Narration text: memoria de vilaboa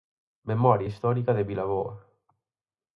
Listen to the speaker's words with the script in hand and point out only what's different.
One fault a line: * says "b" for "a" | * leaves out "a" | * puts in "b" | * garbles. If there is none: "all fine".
* puts in "histórica"